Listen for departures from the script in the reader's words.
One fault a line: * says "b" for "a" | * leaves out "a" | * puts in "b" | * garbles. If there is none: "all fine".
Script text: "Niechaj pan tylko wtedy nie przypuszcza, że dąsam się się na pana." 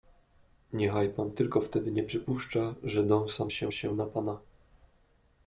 all fine